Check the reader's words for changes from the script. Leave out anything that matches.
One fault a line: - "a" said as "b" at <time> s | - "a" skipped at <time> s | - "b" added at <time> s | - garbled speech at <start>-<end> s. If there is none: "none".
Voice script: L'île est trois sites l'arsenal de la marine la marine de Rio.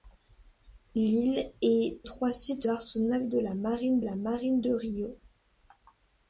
none